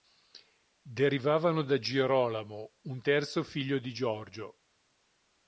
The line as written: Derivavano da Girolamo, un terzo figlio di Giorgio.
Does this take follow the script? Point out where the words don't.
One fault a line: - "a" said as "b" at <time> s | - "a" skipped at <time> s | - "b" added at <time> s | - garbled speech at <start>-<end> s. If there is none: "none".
none